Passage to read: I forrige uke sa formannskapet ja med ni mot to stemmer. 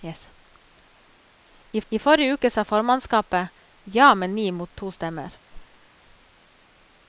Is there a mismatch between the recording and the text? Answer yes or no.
yes